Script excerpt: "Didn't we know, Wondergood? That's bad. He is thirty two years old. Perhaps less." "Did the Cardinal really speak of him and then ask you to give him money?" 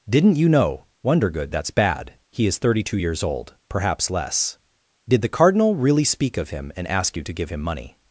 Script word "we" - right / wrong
wrong